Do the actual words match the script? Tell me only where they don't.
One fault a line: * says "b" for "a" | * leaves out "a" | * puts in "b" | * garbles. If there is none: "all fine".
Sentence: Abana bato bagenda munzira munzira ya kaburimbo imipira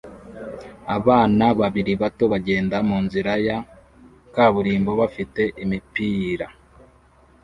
* puts in "babiri"
* leaves out "munzira"
* puts in "bafite"